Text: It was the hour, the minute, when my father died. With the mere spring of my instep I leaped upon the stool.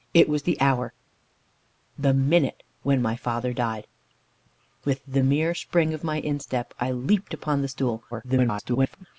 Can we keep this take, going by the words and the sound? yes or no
no